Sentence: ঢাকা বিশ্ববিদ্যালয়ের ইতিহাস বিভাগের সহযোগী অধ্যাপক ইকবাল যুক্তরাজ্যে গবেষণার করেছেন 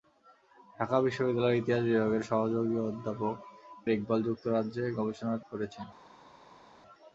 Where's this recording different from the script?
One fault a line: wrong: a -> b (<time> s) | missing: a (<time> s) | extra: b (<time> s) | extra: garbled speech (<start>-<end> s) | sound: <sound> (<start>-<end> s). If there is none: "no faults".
no faults